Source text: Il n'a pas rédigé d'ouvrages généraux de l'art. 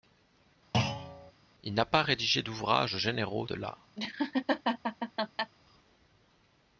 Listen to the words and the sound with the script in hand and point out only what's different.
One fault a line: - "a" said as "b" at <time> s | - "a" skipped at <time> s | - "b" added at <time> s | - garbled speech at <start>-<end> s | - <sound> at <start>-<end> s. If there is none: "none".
- thud at 0.7-1.3 s
- laugh at 4.0-5.5 s